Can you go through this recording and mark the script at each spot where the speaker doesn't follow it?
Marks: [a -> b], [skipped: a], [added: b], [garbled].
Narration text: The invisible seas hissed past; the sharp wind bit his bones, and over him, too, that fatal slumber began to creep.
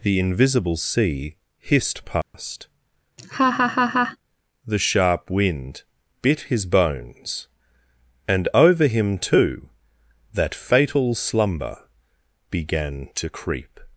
The invisible [seas -> sea] hissed past; the sharp wind bit his bones, and over him, too, that fatal slumber began to creep.